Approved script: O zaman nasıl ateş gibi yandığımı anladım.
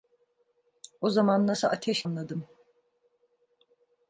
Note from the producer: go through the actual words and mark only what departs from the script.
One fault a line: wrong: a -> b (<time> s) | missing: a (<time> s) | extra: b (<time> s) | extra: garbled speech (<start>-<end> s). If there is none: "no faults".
missing: gibi yandığımı (2.0 s)